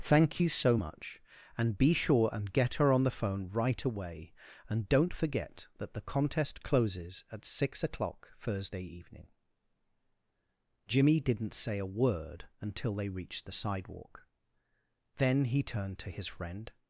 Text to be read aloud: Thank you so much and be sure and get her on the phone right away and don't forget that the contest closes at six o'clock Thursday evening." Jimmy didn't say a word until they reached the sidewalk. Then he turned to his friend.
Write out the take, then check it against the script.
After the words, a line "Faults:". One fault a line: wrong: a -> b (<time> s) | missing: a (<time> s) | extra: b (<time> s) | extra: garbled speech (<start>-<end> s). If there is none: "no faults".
Thank you so much and be sure and get her on the phone right away and don't forget that the contest closes at six o'clock Thursday evening." Jimmy didn't say a word until they reached the sidewalk. Then he turned to his friend.
Faults:
no faults